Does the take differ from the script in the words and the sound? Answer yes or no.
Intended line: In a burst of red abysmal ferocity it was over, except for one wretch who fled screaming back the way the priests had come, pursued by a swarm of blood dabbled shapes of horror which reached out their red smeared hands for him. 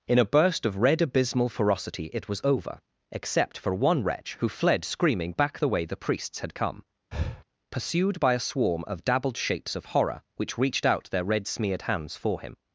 yes